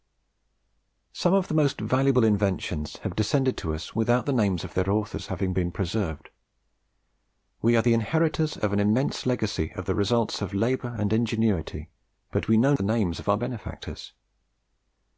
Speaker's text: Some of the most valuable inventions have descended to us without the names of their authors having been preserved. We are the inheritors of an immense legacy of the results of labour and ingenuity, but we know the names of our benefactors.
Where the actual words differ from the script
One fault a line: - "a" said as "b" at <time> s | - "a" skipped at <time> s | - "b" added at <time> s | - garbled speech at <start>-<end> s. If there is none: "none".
none